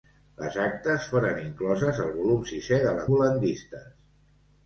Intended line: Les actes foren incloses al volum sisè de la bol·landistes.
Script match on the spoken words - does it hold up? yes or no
yes